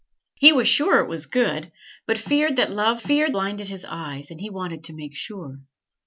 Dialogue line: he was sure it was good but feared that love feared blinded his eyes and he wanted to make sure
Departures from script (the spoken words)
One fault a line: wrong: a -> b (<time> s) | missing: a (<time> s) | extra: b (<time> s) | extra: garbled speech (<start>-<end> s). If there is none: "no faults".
no faults